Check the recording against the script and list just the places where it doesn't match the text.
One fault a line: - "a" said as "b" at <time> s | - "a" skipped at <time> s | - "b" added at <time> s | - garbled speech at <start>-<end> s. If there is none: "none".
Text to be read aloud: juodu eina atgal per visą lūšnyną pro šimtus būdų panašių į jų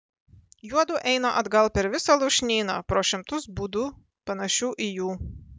none